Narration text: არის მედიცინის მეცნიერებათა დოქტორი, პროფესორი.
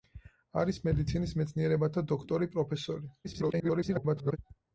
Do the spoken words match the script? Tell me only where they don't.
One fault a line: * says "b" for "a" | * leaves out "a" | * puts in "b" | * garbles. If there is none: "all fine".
* garbles